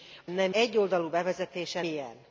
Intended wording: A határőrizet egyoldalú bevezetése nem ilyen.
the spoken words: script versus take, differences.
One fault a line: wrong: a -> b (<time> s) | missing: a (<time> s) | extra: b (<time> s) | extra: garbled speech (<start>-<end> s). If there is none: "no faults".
wrong: határőrizet -> nem (0.3 s)
missing: nem (1.8 s)